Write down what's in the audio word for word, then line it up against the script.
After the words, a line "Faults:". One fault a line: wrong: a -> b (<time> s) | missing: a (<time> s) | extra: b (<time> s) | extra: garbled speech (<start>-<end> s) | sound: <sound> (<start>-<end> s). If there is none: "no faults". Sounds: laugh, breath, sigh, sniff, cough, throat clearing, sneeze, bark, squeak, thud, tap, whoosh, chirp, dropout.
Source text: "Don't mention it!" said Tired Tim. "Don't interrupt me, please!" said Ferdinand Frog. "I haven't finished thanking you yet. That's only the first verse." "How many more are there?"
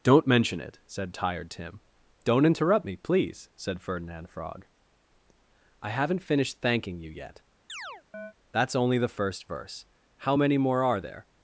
"Don't mention it!" said Tired Tim. "Don't interrupt me, please!" said Ferdinand Frog. "I haven't finished thanking you yet. That's only the first verse." "How many more are there?"
Faults:
sound: chirp (7.7-8.3 s)